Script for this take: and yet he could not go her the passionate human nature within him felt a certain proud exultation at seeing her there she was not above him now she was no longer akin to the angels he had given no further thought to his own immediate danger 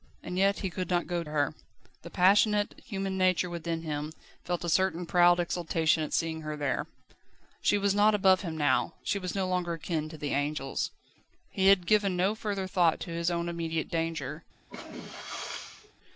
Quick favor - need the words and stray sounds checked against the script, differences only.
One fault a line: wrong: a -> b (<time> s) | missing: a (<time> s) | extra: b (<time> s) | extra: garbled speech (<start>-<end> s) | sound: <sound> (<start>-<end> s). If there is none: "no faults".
sound: sneeze (14.7-15.9 s)